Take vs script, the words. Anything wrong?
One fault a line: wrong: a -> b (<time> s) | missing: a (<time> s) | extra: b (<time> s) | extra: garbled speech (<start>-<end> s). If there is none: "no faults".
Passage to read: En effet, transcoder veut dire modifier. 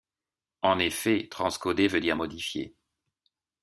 no faults